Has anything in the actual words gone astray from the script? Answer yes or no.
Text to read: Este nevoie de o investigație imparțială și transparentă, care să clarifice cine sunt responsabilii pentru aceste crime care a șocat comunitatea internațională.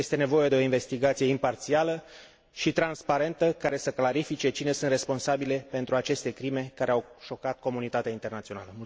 yes